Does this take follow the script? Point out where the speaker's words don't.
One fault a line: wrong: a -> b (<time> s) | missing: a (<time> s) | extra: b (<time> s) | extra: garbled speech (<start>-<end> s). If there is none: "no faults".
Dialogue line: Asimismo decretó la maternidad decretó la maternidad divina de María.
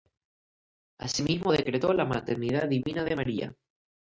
missing: decretó la maternidad (2.7 s)